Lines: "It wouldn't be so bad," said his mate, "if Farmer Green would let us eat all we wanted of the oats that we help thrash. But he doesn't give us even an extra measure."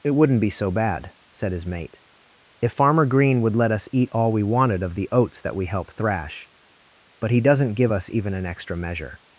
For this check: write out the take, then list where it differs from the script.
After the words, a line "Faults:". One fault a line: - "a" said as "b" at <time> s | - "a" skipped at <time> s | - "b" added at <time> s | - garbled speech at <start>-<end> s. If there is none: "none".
"It wouldn't be so bad," said his mate, "if Farmer Green would let us eat all we wanted of the oats that we help thrash. But he doesn't give us even an extra measure."
Faults:
none